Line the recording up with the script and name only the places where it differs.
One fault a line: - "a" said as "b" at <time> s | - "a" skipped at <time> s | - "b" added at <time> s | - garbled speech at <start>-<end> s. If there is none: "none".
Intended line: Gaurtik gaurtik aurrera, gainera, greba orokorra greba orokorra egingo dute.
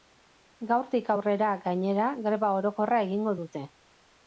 - "gaurtik" skipped at 1.1 s
- "greba orokorra" skipped at 3.0 s